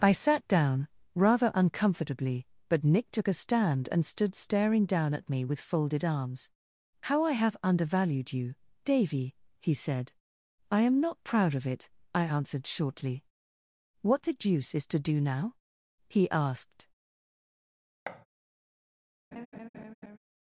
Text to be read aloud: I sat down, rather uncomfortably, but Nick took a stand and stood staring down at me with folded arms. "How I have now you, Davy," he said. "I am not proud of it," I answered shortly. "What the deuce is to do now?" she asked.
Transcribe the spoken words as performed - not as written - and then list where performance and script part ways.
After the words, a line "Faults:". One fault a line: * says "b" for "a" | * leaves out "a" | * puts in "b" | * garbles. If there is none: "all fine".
I sat down, rather uncomfortably, but Nick took a stand and stood staring down at me with folded arms. "How I have undervalued you, Davy," he said. "I am not proud of it," I answered shortly. "What the deuce is to do now?" he asked.
Faults:
* says "undervalued" for "now"
* says "he" for "she"